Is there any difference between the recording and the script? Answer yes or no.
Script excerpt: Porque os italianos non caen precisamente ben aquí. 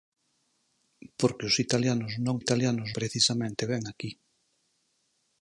yes